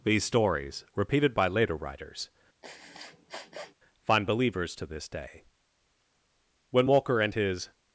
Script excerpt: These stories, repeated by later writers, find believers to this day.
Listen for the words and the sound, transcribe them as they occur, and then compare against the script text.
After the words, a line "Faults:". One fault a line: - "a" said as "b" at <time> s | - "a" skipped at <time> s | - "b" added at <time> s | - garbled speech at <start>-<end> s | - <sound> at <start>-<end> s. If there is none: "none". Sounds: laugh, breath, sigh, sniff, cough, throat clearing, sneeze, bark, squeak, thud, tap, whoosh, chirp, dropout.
These stories, repeated by later writers, find believers to this day. When Walker and his
Faults:
- sniff at 2.6-3.7 s
- "When Walker and his" added at 6.7 s